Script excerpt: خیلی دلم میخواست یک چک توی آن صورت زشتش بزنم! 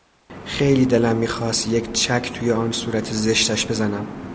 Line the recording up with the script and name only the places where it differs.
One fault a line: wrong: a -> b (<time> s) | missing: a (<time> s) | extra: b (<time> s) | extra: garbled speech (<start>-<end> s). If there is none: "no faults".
no faults